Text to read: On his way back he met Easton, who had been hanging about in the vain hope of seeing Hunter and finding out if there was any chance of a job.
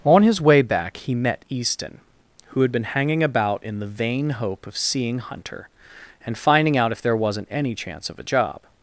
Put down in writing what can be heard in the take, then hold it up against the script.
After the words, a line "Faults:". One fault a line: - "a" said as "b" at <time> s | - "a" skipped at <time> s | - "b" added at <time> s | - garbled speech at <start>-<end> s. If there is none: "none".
On his way back he met Easton, who had been hanging about in the vain hope of seeing Hunter and finding out if there wasn't any chance of a job.
Faults:
- "was" said as "wasn't" at 7.2 s